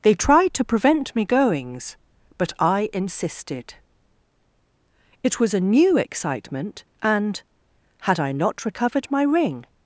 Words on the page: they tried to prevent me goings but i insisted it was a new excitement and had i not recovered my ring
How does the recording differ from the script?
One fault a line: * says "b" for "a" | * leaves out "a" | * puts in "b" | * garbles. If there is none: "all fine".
all fine